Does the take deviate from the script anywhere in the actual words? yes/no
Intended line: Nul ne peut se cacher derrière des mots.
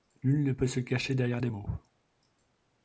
no